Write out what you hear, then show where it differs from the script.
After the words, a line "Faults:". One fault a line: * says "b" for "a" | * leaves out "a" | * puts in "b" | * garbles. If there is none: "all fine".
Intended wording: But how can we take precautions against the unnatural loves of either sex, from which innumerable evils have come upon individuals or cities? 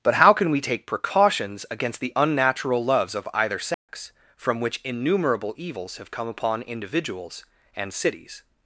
But how can we take precautions against the unnatural loves of either sex, from which innumerable evils have come upon individuals and cities?
Faults:
* says "and" for "or"